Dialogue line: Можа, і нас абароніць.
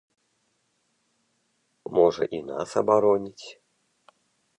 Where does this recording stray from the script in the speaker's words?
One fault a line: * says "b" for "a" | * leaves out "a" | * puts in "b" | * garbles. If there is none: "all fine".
all fine